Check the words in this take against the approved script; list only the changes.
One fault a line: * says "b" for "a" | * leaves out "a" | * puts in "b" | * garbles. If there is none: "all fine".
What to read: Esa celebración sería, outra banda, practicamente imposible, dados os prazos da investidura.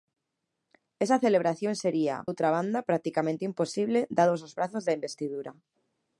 all fine